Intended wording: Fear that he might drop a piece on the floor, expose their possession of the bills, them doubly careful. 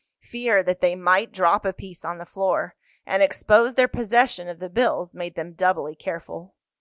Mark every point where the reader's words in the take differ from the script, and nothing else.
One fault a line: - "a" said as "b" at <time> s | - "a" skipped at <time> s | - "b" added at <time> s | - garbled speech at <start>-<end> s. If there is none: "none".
- "he" said as "they" at 0.8 s
- "and" added at 3.0 s
- "made" added at 5.1 s